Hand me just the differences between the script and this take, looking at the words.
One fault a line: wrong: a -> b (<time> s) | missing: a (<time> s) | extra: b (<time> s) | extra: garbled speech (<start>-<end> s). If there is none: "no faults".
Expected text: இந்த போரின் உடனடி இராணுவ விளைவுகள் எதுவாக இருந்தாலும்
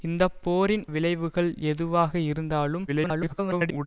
missing: உடனடி இராணுவ (0.8 s)
extra: garbled speech (2.9-3.9 s)